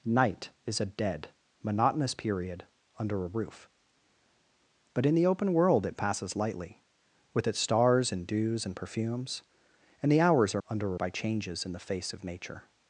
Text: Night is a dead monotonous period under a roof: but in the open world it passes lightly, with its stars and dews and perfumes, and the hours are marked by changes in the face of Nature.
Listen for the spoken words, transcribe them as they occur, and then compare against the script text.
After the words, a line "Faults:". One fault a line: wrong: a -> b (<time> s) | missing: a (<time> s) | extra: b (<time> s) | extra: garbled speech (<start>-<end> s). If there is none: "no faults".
Night is a dead monotonous period under a roof: but in the open world it passes lightly, with its stars and dews and perfumes, and the hours are under by changes in the face of Nature.
Faults:
wrong: marked -> under (10.7 s)